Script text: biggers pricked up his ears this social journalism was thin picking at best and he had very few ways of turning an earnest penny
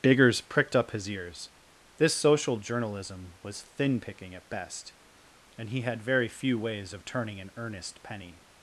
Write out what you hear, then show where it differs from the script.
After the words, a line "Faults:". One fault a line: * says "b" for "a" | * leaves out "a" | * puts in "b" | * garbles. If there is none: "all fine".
biggers pricked up his ears this social journalism was thin picking at best and he had very few ways of turning an earnest penny
Faults:
all fine